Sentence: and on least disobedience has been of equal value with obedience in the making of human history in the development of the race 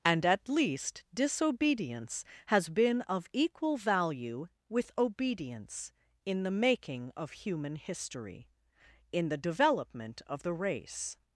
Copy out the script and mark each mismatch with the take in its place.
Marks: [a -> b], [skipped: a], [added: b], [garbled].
and [on -> at] least disobedience has been of equal value with obedience in the making of human history in the development of the race